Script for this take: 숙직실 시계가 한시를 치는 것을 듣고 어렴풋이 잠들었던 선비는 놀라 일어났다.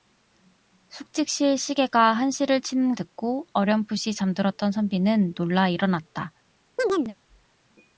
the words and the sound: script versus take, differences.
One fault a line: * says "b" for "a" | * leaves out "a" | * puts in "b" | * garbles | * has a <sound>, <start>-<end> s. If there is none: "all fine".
* leaves out "것을"
* has a chirp, 6.8-7.2 s